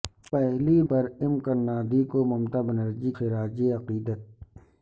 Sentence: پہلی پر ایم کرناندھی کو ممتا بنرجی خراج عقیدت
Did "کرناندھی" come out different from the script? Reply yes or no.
no